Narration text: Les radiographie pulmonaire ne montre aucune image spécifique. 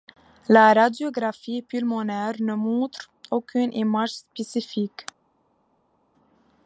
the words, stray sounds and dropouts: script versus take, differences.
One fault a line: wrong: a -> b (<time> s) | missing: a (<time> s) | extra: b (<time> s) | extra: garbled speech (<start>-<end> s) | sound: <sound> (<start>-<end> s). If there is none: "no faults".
wrong: Les -> La (0.5 s)